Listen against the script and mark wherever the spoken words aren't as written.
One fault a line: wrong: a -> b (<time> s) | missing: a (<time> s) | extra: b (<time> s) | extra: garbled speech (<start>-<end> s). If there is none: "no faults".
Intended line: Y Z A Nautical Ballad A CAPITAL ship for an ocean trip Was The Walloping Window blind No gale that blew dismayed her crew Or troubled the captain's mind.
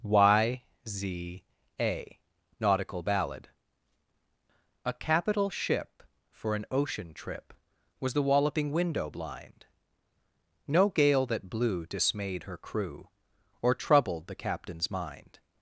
no faults